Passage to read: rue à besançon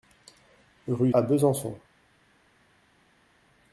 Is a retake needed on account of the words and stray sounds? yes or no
no